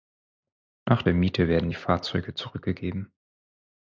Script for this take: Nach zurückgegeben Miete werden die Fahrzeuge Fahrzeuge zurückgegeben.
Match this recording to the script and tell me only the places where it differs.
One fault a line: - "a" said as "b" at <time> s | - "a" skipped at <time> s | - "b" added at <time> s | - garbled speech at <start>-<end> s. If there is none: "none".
- "zurückgegeben" said as "der" at 1.0 s
- "Fahrzeuge" skipped at 2.3 s